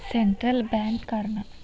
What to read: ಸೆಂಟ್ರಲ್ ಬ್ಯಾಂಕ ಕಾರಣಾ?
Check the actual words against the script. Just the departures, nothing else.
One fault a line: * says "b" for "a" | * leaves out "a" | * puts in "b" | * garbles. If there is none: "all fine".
all fine